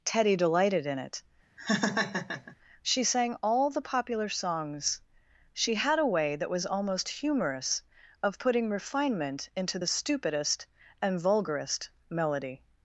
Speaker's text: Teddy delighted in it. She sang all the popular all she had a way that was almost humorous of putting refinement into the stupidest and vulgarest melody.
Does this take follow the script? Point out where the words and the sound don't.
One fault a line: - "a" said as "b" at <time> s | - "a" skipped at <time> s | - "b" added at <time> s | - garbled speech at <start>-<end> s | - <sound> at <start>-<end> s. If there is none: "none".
- laugh at 1.6-2.6 s
- "all" said as "songs" at 4.3 s